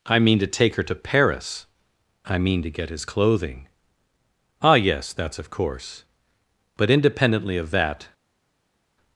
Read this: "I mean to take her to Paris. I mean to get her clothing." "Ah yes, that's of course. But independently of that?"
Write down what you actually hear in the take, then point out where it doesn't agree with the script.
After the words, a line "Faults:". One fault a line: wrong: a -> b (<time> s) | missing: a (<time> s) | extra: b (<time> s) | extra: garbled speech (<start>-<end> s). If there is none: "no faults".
"I mean to take her to Paris. I mean to get his clothing." "Ah yes, that's of course. But independently of that?"
Faults:
wrong: her -> his (2.9 s)